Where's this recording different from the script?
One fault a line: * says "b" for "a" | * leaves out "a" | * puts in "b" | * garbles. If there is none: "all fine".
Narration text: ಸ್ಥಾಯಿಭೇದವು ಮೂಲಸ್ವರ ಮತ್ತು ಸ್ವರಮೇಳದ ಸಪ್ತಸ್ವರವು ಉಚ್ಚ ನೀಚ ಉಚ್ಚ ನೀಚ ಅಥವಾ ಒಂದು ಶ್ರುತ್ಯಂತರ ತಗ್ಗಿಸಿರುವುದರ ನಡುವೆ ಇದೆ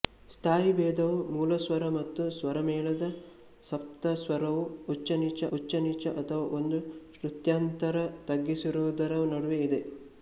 all fine